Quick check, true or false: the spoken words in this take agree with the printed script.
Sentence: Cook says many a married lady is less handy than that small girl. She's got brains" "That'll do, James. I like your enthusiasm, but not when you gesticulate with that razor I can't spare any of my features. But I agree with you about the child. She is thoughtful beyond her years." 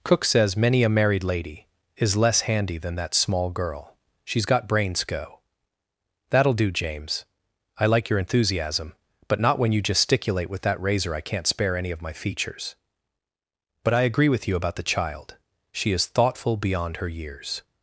false